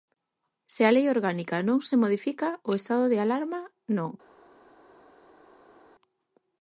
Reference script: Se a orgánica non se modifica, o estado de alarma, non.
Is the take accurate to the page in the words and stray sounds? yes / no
no